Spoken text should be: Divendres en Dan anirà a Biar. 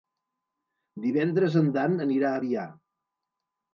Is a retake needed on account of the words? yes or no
no